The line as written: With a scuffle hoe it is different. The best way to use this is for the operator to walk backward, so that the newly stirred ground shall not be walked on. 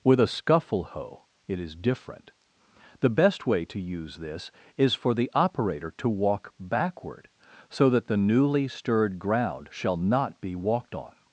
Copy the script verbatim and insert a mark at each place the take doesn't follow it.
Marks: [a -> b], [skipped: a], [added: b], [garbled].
With a scuffle hoe it is different. The best way to use this is for the operator to walk backward, so that the newly stirred ground shall not be walked on.